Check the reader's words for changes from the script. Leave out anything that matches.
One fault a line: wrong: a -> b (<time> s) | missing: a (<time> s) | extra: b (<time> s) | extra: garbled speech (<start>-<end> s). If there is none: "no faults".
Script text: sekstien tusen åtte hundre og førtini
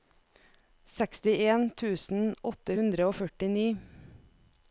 no faults